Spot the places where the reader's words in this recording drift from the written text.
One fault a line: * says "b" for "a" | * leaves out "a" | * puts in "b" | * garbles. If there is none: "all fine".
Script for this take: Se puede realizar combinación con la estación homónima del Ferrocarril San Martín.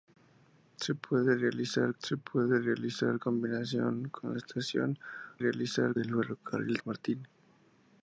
* puts in "se puede realizar"
* says "realizar" for "homónima"
* leaves out "San"